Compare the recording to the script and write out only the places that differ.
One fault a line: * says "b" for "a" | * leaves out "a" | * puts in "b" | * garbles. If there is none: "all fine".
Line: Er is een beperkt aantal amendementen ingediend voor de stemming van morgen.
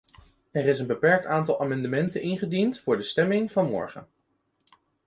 all fine